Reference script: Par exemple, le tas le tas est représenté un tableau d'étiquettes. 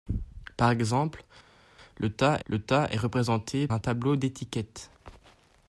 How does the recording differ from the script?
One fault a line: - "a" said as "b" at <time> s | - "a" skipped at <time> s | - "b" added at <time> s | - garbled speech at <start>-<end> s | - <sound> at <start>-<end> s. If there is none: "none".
none